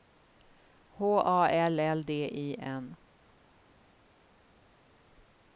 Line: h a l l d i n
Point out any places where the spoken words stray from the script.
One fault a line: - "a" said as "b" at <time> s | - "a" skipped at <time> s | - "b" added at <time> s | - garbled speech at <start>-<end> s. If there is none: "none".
none